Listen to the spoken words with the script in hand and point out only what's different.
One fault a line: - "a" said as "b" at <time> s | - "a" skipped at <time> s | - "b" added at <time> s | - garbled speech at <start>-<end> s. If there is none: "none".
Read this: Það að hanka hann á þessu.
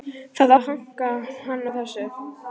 none